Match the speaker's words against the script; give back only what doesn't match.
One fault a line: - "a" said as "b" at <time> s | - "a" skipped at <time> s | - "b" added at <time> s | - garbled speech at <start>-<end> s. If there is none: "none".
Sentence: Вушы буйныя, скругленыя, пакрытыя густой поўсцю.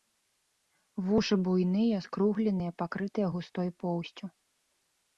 none